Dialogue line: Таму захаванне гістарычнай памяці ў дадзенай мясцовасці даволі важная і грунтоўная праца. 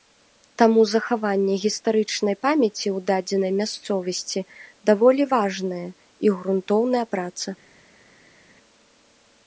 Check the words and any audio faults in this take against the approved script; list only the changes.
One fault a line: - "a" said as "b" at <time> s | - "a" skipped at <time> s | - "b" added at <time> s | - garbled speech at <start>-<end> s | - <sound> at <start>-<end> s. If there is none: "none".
none